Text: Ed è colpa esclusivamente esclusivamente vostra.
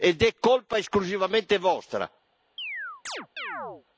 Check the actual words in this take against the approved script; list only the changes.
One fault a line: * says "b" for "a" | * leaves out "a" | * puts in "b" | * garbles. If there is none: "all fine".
* leaves out "esclusivamente"